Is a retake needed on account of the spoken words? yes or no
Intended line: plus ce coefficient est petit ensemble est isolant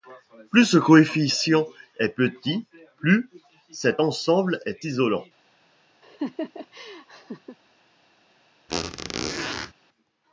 yes